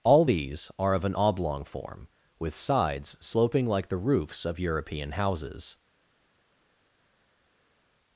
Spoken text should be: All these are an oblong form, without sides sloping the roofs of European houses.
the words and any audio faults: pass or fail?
fail